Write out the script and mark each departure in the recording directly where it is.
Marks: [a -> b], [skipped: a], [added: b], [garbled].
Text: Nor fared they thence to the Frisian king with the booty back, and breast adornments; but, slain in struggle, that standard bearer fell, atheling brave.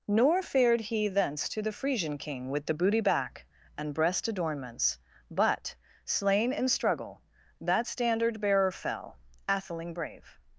Nor fared [they -> he] thence to the Frisian king with the booty back, and breast adornments; but, slain in struggle, that standard bearer fell, atheling brave.